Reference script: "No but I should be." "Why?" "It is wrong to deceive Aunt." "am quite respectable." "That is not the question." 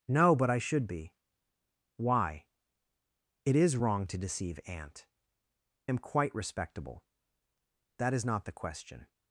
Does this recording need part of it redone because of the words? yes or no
no